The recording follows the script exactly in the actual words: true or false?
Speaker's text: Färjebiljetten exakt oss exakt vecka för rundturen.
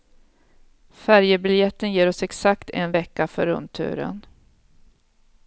false